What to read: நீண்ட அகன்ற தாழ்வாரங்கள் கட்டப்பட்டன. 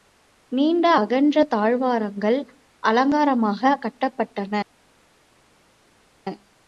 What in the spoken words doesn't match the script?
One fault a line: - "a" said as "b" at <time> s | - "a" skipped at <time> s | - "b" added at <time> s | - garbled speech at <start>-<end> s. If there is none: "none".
- "அலங்காரமாகக்" added at 2.8 s